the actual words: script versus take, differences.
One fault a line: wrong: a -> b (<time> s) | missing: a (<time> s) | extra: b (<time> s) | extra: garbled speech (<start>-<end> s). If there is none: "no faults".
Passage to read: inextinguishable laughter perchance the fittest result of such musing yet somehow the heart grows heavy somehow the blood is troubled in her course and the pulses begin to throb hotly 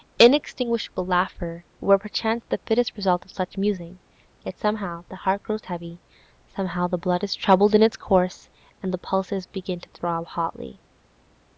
extra: were (1.8 s)
wrong: her -> its (7.8 s)